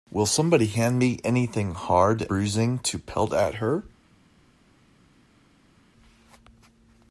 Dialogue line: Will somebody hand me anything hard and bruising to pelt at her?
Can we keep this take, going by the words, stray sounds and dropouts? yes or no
no